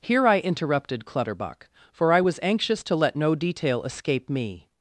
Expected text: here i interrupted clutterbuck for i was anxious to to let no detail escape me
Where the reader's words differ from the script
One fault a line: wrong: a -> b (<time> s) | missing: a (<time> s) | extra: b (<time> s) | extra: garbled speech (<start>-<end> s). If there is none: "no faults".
missing: to (2.9 s)